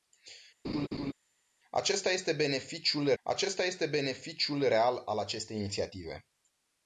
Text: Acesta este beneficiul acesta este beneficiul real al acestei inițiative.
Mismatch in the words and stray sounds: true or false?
true